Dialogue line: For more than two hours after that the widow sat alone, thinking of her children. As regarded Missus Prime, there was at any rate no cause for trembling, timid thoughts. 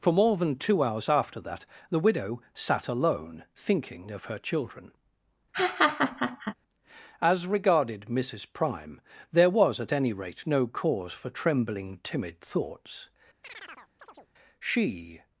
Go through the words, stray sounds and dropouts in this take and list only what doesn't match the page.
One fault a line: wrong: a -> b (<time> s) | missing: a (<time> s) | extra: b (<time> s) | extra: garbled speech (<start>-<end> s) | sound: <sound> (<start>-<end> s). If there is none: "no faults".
sound: laugh (5.5-6.5 s)
sound: chirp (13.4-14.3 s)
extra: She (14.6 s)